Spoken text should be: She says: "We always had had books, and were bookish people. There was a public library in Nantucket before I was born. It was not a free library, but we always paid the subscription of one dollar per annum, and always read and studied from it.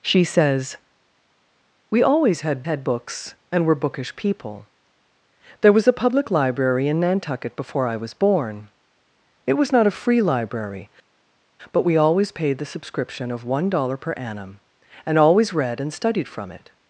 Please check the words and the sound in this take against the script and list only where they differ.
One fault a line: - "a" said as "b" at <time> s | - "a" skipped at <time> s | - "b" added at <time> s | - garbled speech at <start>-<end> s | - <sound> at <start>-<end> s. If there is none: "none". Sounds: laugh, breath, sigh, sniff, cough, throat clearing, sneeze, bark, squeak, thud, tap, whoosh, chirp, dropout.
none